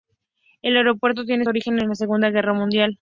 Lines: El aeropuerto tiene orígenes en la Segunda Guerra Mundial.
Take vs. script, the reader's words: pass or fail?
pass